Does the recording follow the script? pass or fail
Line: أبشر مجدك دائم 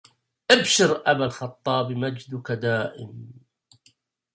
fail